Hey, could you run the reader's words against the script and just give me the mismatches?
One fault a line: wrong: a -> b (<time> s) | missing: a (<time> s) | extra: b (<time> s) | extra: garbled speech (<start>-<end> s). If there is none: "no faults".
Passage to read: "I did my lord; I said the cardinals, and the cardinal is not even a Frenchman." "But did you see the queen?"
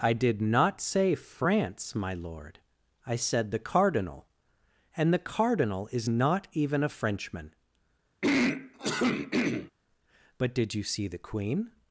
extra: not say France (0.4 s)
wrong: cardinals -> cardinal (3.6 s)